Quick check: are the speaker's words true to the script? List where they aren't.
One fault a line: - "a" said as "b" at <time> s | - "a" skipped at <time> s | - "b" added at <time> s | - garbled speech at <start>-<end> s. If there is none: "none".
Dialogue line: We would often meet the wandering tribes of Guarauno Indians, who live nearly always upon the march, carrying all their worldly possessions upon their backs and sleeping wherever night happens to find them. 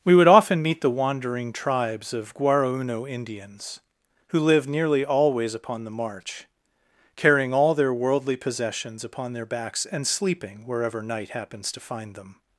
none